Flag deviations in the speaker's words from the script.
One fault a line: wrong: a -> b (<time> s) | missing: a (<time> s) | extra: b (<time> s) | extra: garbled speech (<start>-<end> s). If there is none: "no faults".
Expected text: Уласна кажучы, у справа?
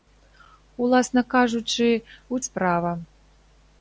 no faults